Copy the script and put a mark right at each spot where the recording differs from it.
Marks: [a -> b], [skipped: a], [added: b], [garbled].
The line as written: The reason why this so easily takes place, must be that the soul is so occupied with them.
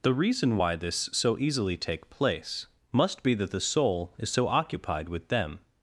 The reason why this so easily [takes -> take] place, must be that the soul is so occupied with them.